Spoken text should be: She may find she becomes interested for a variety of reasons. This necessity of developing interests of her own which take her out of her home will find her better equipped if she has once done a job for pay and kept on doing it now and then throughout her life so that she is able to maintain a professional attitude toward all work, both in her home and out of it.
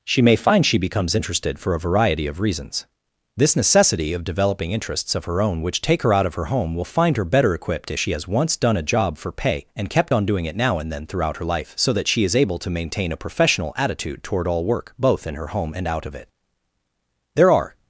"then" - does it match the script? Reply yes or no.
yes